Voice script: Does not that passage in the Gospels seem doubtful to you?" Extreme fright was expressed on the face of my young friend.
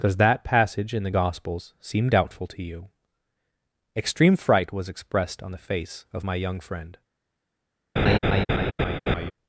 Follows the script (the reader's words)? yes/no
no